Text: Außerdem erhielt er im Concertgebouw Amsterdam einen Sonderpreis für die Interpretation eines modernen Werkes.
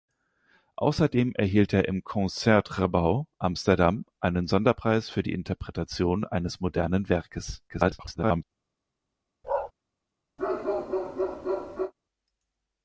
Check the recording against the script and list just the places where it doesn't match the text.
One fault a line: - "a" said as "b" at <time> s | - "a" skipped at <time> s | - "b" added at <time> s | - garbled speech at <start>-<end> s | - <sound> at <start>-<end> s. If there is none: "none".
- garbled speech at 7.7-8.4 s
- bark at 9.4-9.7 s
- bark at 10.4-11.9 s